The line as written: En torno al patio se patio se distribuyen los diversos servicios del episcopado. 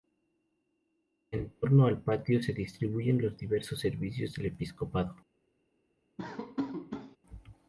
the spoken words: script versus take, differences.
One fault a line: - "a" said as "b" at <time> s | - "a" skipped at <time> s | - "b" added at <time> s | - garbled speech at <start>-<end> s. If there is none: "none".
- "patio se" skipped at 2.5 s